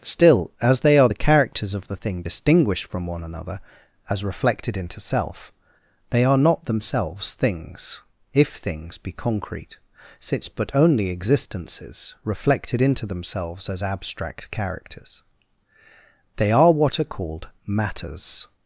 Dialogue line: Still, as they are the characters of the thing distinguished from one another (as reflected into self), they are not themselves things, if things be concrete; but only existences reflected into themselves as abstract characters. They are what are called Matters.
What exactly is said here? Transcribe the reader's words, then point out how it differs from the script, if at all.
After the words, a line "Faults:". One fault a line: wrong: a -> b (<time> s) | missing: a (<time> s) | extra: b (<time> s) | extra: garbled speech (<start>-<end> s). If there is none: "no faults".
Still, as they are the characters of the thing distinguished from one another (as reflected into self), they are not themselves things, if things be concrete; since but only existences reflected into themselves as abstract characters. They are what are called Matters.
Faults:
extra: since (10.2 s)